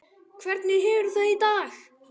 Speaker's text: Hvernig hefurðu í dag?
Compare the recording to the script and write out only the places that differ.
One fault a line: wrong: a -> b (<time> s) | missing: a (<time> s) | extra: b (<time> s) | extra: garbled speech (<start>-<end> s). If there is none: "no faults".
extra: það (1.2 s)